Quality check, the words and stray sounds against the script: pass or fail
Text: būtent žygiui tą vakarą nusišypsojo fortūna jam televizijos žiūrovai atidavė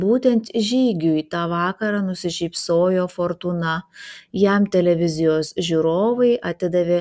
pass